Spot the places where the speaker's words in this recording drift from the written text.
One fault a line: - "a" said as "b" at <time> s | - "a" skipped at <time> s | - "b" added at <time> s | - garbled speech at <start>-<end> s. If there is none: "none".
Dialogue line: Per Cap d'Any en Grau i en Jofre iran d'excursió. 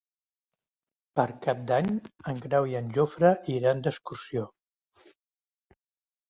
none